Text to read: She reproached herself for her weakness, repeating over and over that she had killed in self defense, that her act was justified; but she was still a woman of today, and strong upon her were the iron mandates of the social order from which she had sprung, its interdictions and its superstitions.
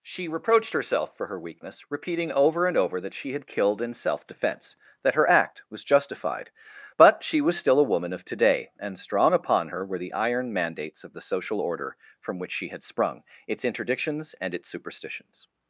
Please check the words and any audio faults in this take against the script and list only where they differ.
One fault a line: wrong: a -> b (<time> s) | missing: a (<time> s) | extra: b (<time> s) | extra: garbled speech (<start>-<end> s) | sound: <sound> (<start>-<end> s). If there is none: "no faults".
no faults